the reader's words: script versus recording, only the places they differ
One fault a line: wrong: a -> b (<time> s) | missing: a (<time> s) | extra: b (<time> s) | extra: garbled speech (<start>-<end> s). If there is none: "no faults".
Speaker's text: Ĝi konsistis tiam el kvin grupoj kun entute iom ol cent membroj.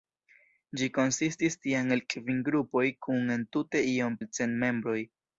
no faults